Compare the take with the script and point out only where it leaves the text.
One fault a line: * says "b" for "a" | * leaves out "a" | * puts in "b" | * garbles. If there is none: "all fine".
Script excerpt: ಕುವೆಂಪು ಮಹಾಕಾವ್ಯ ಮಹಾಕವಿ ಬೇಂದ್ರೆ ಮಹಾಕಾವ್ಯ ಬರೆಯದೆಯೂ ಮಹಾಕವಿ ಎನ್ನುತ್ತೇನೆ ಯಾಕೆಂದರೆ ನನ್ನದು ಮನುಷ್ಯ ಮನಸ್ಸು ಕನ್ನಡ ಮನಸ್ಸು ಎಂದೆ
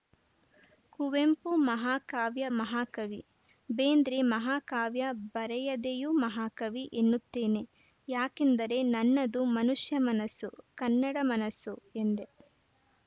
all fine